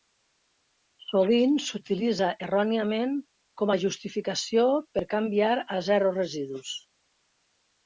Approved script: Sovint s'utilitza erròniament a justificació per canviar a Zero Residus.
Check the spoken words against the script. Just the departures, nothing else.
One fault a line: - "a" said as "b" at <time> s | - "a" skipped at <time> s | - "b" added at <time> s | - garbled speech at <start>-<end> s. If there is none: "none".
- "com" added at 3.6 s